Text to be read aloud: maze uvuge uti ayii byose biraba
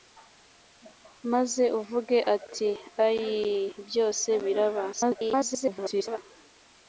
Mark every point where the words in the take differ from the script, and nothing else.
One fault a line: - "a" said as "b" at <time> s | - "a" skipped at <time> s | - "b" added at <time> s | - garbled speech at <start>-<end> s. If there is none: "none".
- garbled speech at 4.9-6.2 s